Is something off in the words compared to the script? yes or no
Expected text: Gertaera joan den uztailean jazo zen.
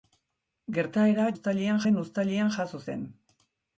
yes